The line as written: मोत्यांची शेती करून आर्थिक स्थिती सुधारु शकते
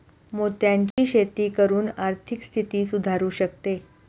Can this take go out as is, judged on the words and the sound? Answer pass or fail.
fail